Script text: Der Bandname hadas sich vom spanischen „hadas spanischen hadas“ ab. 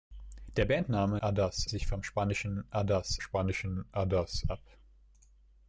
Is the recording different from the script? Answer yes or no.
no